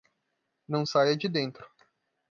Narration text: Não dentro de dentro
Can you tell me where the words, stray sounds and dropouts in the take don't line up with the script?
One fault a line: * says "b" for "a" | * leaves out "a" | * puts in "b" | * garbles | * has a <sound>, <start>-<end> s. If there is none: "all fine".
* says "saia" for "dentro"